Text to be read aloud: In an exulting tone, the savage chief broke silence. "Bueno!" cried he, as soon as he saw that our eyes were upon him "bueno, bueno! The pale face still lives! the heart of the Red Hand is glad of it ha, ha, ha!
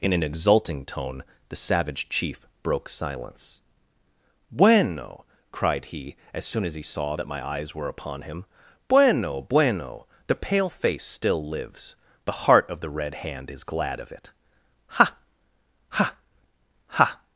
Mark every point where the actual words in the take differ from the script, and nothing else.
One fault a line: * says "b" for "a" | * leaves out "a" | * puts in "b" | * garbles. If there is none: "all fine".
* says "my" for "our"